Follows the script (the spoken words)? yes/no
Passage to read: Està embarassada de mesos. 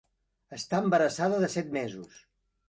no